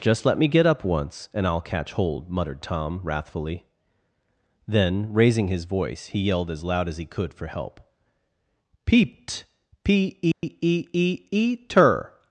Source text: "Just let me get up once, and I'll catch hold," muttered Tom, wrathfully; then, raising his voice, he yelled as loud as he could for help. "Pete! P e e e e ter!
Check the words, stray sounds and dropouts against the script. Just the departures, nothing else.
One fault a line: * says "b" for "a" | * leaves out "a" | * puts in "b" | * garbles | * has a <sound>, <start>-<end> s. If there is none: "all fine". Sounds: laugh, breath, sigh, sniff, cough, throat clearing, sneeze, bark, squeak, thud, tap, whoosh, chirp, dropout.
* says "Peeped" for "Pete"
* has a dropout, 10.3-10.4 s